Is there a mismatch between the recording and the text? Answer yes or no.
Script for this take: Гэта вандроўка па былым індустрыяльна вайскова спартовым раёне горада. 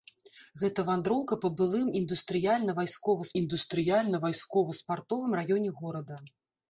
yes